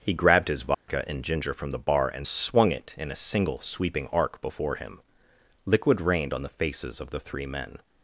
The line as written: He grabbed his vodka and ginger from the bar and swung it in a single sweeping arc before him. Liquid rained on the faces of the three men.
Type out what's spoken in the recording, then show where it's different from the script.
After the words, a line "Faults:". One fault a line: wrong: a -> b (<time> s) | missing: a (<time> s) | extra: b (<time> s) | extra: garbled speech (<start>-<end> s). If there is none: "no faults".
He grabbed his vodka and ginger from the bar and swung it in a single sweeping arc before him. Liquid rained on the faces of the three men.
Faults:
no faults